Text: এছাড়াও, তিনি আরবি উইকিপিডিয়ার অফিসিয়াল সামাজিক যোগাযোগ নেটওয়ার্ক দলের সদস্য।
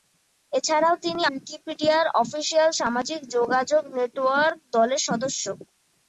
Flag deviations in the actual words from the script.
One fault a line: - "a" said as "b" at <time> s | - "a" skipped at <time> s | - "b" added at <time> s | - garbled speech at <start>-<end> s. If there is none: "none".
- "আরবি" skipped at 1.2 s